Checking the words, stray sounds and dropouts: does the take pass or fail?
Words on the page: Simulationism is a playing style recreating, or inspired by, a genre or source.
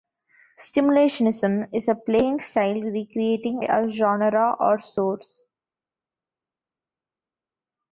fail